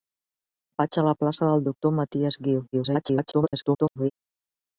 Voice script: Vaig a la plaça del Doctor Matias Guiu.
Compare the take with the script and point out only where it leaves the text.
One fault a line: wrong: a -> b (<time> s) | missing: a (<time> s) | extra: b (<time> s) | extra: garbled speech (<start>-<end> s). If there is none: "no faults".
extra: garbled speech (2.7-4.1 s)